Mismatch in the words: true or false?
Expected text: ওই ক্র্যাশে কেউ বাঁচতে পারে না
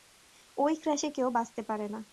false